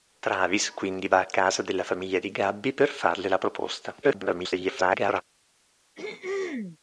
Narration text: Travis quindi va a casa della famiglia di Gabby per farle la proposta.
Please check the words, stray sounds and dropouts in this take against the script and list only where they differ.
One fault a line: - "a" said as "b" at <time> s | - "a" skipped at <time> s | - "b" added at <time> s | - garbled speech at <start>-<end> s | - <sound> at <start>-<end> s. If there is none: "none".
- garbled speech at 4.0-5.2 s
- throat clearing at 6.0-6.8 s